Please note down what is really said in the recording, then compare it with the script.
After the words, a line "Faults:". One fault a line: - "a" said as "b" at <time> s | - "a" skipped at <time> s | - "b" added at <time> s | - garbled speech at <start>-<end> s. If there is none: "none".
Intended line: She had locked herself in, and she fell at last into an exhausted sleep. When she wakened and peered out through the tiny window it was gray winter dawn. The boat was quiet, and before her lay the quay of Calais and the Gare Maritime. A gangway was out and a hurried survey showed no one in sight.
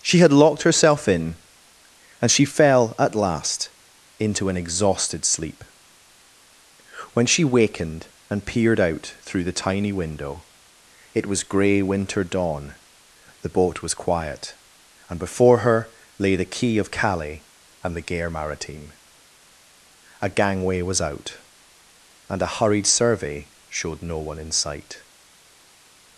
She had locked herself in, and she fell at last into an exhausted sleep. When she wakened and peered out through the tiny window it was gray winter dawn. The boat was quiet, and before her lay the quay of Calais and the Gare Maritime. A gangway was out and a hurried survey showed no one in sight.
Faults:
none